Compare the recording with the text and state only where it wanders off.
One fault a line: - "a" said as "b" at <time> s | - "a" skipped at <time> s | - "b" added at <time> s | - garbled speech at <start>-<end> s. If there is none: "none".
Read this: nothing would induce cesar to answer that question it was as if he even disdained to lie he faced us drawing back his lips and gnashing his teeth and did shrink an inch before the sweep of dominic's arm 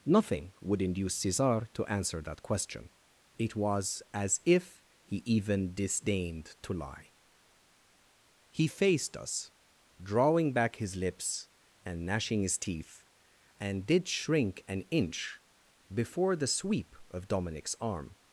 none